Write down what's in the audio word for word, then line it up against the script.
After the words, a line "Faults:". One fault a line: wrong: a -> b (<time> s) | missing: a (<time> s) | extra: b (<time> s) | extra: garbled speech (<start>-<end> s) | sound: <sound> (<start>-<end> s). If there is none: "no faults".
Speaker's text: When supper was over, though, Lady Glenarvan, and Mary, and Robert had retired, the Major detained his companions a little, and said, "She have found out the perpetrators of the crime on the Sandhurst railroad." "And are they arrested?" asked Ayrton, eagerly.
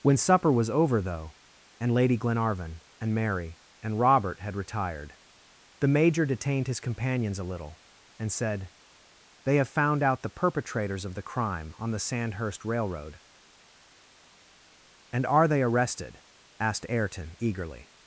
When supper was over, though, and Lady Glenarvan, and Mary, and Robert had retired, the Major detained his companions a little, and said, "They have found out the perpetrators of the crime on the Sandhurst railroad." "And are they arrested?" asked Ayrton, eagerly.
Faults:
extra: and (1.8 s)
wrong: She -> They (9.4 s)